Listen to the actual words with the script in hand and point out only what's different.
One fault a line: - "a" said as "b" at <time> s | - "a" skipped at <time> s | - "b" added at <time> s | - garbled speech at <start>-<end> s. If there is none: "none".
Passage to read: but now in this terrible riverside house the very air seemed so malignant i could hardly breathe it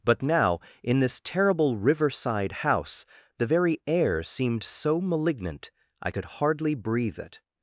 none